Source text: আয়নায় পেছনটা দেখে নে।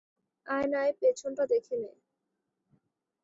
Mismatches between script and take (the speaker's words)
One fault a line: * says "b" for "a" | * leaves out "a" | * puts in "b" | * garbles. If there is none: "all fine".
all fine